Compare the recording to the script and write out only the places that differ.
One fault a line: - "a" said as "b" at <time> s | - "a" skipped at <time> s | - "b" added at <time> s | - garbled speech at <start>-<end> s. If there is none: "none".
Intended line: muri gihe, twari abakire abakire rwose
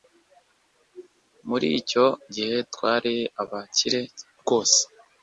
- "icyo" added at 1.8 s
- "abakire" skipped at 4.0 s